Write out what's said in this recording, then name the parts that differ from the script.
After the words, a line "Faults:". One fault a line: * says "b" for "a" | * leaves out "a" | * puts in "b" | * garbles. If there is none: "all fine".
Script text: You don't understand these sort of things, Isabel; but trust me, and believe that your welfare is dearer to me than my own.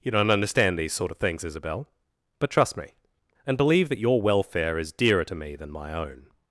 You don't understand these sort of things, Isabel; but trust me, and believe that your welfare is dearer to me than my own.
Faults:
all fine